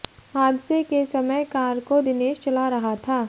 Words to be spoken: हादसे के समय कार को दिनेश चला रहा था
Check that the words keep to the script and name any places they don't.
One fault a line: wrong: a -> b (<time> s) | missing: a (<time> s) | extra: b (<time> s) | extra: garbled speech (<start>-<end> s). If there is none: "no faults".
no faults